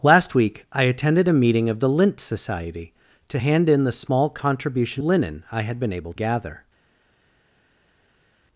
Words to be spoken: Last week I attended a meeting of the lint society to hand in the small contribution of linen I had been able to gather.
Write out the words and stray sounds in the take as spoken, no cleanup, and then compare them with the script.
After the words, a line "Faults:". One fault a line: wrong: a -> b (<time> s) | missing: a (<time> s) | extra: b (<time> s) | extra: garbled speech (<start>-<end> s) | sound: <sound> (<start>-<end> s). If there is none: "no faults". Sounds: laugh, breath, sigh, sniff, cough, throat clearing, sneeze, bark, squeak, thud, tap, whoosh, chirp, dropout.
Last week I attended a meeting of the lint society to hand in the small contribution linen I had been able gather.
Faults:
missing: of (5.0 s)
missing: to (6.1 s)